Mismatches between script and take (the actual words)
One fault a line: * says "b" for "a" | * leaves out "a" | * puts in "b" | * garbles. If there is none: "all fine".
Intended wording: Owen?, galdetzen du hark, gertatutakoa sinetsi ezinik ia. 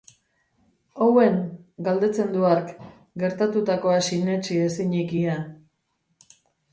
all fine